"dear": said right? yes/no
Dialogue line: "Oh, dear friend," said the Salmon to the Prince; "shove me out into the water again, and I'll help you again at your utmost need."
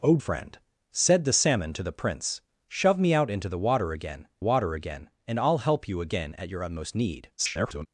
no